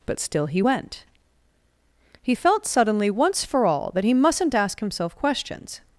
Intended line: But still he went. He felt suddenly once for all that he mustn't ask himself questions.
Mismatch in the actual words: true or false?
false